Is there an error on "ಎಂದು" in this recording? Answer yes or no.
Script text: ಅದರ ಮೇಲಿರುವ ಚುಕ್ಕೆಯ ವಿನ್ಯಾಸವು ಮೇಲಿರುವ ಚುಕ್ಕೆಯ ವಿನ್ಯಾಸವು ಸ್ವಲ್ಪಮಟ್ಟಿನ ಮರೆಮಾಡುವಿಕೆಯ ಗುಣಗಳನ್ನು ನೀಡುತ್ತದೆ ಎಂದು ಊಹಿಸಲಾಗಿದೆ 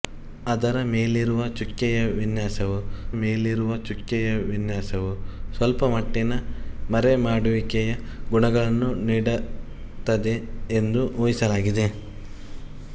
no